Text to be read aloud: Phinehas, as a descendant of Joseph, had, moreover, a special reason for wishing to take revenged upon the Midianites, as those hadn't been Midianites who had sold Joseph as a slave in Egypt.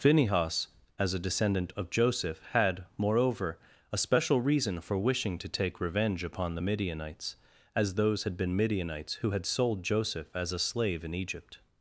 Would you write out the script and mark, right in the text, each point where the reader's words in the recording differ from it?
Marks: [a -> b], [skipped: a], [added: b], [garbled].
Phinehas, as a descendant of Joseph, had, moreover, a special reason for wishing to take [revenged -> revenge] upon the Midianites, as those [hadn't -> had] been Midianites who had sold Joseph as a slave in Egypt.